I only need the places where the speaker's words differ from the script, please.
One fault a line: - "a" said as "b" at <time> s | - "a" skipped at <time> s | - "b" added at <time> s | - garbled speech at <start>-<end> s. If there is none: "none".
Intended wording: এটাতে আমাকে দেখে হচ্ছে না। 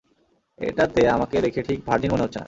- "ঠিক ভার্জিন মনে" added at 1.6 s